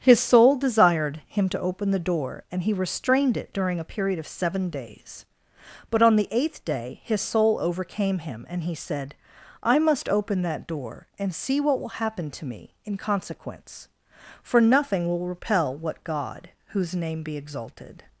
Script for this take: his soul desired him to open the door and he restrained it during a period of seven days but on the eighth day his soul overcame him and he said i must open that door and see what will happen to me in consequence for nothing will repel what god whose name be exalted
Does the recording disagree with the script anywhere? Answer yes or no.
no